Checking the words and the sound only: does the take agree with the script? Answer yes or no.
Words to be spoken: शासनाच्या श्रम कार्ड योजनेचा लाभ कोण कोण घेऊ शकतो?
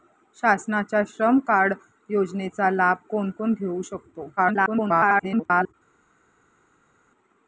no